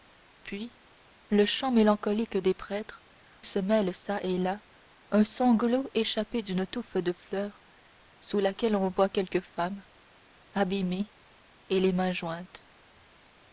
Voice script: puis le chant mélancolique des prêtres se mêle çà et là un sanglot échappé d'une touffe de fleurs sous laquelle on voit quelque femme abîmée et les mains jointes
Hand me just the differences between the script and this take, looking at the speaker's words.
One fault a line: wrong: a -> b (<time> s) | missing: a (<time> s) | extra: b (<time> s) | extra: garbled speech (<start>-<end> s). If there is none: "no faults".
no faults